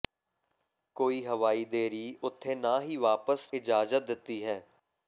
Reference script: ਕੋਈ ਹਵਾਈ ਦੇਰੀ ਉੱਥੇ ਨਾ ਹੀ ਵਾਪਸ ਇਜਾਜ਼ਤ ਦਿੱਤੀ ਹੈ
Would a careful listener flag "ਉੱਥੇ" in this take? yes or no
no